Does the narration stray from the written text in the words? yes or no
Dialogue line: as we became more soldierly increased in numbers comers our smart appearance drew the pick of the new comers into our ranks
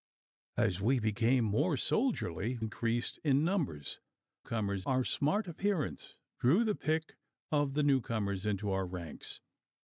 no